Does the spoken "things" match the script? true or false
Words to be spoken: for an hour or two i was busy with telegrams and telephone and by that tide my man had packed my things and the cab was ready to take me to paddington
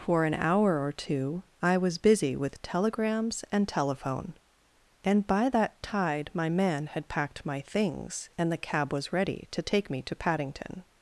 true